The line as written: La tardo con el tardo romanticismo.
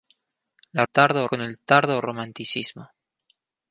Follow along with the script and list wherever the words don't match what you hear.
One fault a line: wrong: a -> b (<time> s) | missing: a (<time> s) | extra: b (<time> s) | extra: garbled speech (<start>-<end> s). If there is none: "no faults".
no faults